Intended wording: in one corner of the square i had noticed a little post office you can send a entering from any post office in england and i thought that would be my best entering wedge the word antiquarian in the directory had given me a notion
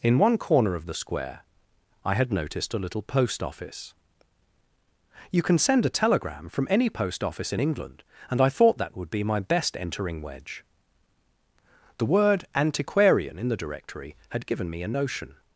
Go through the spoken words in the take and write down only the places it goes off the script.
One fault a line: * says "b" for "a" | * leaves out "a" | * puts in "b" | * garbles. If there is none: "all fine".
* says "telegram" for "entering"